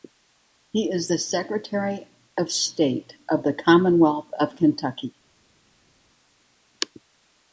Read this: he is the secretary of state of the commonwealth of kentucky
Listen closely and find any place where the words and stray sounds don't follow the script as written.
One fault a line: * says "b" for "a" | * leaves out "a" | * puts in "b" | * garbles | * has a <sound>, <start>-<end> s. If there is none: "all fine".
all fine